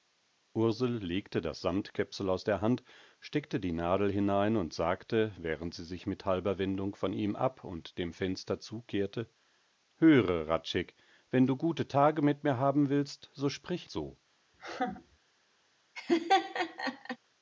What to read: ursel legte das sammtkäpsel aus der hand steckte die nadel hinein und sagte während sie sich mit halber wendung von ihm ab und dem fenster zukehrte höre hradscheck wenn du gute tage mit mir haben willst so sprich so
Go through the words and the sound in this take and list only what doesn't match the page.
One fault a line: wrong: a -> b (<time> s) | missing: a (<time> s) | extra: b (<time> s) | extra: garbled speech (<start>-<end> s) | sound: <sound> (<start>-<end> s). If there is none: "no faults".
sound: laugh (14.5-15.2 s)
sound: laugh (16.0-17.2 s)